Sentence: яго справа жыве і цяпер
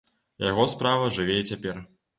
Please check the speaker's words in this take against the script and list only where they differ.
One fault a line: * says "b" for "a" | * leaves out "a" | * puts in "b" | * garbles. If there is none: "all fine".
all fine